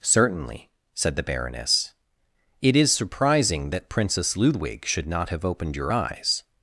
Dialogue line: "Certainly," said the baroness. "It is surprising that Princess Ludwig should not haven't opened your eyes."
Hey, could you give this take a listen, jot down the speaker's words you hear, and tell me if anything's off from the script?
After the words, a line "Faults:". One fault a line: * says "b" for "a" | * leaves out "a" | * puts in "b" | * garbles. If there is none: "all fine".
"Certainly," said the baroness. "It is surprising that Princess Ludwig should not have opened your eyes."
Faults:
* says "have" for "haven't"